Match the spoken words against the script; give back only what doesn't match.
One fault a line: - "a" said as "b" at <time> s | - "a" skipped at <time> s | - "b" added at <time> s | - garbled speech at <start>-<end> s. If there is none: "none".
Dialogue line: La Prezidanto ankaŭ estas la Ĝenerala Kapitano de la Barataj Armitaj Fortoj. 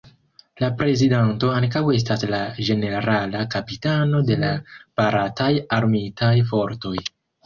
none